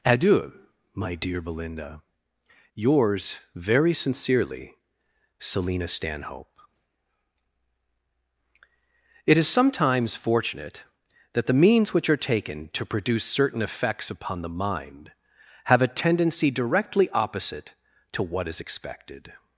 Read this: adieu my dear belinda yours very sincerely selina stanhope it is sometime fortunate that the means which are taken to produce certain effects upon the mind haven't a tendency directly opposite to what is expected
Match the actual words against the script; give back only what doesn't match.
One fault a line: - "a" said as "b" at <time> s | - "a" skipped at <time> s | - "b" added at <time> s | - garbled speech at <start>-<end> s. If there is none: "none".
- "sometime" said as "sometimes" at 9.5 s
- "haven't" said as "have" at 15.7 s